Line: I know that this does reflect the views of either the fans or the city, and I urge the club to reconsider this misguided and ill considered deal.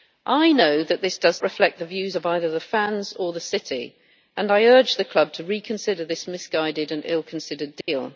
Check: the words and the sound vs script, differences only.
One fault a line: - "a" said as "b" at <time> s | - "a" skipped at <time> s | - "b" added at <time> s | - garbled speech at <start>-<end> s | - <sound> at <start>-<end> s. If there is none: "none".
- dropout at 7.8-7.9 s